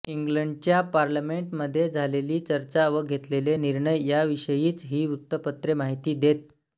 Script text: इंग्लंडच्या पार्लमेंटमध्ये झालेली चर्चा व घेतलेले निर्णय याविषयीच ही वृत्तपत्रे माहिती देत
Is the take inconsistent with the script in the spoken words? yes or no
no